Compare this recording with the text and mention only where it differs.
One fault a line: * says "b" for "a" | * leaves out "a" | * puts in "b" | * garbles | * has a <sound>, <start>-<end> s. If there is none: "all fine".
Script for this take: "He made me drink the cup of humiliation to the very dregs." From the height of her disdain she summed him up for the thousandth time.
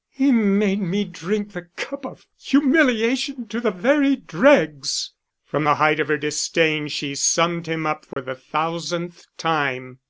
* has a dropout, 8.1-8.2 s